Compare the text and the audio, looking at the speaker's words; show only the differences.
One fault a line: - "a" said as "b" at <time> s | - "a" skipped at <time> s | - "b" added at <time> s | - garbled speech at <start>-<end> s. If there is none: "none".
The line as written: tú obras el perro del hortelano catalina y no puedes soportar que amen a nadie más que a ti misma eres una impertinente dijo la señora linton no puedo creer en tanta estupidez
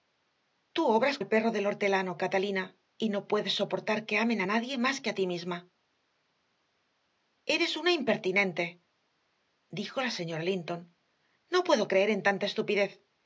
none